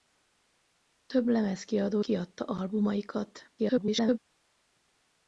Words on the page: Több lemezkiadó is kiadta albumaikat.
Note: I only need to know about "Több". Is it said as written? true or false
true